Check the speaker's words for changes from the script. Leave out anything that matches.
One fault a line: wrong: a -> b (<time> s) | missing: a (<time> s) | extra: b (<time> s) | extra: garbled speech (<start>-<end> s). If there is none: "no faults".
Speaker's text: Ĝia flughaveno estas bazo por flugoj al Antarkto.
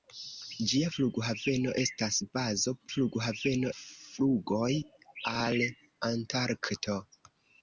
wrong: por -> flughaveno (2.9 s)